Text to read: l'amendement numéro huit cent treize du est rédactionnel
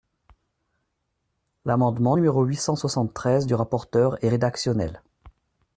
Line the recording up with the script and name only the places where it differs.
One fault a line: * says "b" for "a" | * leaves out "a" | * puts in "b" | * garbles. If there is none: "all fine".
* puts in "soixante"
* puts in "rapporteur"